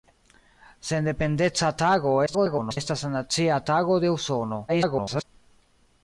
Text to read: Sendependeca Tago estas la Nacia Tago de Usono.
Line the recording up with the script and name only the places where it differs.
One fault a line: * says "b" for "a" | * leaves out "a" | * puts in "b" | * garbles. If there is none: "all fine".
* garbles
* garbles